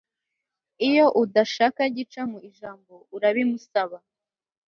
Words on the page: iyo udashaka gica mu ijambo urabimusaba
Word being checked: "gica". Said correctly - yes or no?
yes